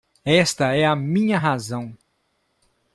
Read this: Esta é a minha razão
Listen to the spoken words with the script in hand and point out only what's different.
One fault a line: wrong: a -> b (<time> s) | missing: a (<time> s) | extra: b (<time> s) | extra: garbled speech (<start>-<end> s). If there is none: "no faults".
no faults